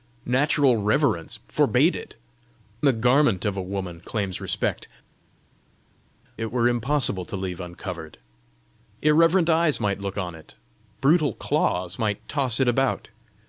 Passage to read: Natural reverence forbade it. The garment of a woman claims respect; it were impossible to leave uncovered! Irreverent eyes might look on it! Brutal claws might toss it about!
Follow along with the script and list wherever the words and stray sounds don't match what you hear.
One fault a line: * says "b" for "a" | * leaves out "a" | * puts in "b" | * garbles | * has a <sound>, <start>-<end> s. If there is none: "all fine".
all fine